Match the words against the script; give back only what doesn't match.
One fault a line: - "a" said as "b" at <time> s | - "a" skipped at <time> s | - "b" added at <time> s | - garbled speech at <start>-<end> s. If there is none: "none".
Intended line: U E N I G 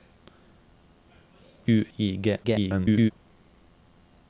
- "E N" skipped at 1.9 s
- garbled speech at 2.4-3.1 s